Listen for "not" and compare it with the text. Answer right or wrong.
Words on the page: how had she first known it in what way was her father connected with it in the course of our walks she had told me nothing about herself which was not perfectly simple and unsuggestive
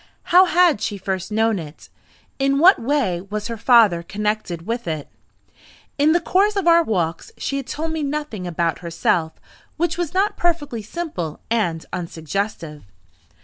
right